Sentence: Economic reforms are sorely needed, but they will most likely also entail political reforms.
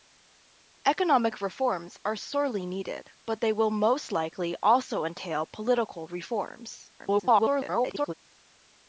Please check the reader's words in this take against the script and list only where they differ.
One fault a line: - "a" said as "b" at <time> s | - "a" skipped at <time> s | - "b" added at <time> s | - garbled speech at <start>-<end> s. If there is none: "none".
- garbled speech at 7.0-8.1 s